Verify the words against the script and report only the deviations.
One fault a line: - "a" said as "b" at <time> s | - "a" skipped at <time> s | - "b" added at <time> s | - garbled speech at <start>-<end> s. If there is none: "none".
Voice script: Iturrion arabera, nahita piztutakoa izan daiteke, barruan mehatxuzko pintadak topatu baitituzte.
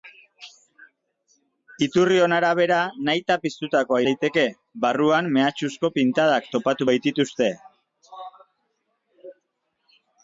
- "izan" skipped at 4.0 s